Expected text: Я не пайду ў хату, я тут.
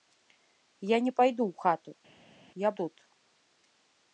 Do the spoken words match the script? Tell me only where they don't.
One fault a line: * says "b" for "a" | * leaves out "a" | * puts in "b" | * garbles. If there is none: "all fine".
all fine